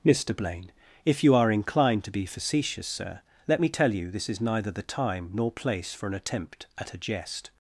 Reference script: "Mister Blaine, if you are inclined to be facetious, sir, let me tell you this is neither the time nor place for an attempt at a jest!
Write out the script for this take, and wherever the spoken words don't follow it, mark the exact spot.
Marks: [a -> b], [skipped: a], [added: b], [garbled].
"Mister Blaine, if you are inclined to be facetious, sir, let me tell you this is neither the time nor place for an attempt at a jest!